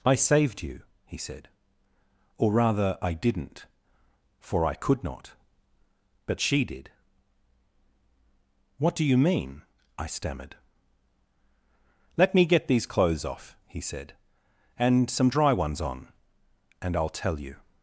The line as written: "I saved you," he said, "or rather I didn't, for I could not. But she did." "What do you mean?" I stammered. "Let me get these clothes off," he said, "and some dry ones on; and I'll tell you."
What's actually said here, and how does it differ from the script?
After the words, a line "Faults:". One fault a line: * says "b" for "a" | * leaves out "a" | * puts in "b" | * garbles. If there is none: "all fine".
"I saved you," he said, "or rather I didn't, for I could not. But she did." "What do you mean?" I stammered. "Let me get these clothes off," he said, "and some dry ones on; and I'll tell you."
Faults:
all fine